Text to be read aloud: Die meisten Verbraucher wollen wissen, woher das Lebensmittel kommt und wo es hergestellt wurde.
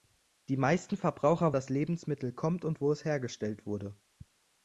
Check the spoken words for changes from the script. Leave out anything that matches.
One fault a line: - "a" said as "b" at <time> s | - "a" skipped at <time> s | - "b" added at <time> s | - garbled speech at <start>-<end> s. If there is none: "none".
- "wollen wissen woher" skipped at 1.5 s